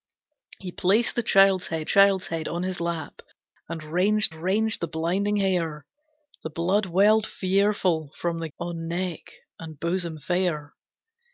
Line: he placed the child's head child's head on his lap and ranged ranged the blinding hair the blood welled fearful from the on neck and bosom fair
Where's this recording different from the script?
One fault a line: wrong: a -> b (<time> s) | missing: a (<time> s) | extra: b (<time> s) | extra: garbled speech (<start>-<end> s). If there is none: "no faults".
no faults